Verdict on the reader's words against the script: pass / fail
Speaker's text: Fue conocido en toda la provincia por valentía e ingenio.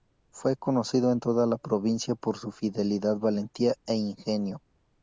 fail